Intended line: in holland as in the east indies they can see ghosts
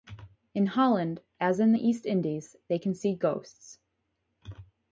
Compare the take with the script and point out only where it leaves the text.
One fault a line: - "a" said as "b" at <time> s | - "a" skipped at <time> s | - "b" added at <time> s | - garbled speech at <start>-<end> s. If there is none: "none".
none